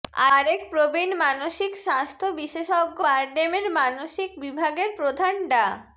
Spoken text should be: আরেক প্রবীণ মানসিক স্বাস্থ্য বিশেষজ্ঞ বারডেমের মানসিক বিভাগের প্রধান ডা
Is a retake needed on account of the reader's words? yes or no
no